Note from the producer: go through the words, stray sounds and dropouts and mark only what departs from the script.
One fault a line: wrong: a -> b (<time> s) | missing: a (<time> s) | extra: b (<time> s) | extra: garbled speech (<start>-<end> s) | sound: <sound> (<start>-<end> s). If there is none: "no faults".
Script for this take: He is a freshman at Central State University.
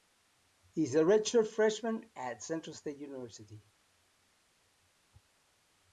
extra: redshirt (1.0 s)